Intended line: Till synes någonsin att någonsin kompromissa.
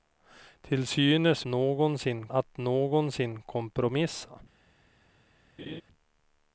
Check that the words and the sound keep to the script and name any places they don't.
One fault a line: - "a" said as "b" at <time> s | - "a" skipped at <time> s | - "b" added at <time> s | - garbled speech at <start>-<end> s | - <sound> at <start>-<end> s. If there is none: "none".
- laugh at 5.6-5.8 s